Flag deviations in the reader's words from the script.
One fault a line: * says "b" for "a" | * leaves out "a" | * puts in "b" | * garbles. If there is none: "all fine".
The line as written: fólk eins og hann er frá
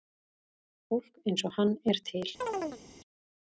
* says "til" for "frá"